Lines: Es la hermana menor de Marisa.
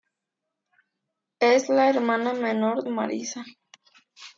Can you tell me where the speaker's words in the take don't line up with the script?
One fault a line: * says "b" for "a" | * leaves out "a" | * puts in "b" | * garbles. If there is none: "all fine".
* leaves out "de"